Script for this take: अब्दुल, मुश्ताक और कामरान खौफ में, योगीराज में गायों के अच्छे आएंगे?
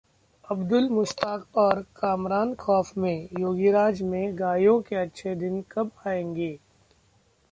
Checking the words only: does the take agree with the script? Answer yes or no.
no